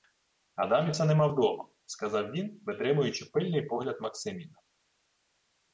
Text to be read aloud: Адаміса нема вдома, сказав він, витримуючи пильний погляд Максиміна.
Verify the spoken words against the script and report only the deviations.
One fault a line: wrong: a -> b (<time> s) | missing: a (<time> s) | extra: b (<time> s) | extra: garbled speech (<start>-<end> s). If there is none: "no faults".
no faults